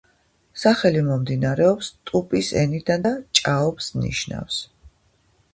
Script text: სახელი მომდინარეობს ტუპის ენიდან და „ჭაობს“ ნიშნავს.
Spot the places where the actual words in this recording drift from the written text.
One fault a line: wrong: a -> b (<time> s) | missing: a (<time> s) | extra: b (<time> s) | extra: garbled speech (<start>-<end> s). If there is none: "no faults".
no faults